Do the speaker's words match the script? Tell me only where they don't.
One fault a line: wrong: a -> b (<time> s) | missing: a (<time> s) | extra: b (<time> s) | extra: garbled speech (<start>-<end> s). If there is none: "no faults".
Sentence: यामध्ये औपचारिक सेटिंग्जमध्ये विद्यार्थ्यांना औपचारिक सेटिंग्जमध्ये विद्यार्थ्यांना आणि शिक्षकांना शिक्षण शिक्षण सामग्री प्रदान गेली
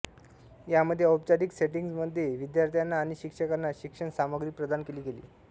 missing: औपचारिक सेटिंग्जमध्ये विद्यार्थ्यांना (3.0 s)
missing: शिक्षण (4.1 s)
extra: केली (4.8 s)